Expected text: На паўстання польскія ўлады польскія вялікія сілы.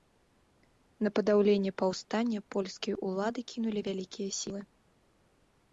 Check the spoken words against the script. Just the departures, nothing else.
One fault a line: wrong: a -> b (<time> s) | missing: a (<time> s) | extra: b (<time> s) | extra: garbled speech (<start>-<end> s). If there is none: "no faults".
extra: падаўленне (1.2 s)
wrong: польскія -> кінулі (3.5 s)